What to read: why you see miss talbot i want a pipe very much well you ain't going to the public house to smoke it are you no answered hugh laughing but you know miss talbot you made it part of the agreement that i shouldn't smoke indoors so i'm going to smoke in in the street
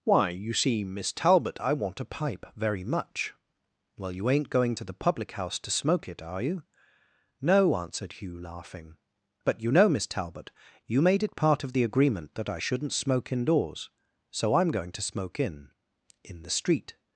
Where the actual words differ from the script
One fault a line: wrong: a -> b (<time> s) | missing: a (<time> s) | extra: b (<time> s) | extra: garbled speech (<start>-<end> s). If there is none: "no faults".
no faults